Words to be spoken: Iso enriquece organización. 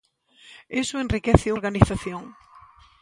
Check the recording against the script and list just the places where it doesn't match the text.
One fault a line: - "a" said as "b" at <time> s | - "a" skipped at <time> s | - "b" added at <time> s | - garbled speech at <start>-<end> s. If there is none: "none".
none